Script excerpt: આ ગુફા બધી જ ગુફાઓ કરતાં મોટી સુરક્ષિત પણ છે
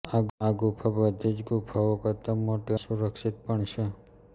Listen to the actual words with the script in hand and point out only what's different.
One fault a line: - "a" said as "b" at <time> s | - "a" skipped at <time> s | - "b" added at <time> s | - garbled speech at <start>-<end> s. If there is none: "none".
none